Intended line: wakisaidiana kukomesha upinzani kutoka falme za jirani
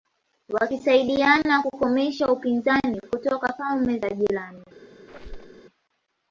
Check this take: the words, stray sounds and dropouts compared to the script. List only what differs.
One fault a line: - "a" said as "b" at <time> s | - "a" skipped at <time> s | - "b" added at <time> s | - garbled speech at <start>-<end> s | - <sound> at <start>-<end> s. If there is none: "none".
- squeak at 5.1-5.6 s